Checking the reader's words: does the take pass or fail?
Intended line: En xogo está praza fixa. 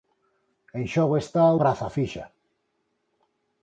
pass